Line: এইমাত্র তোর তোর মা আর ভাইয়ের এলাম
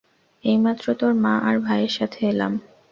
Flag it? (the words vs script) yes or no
yes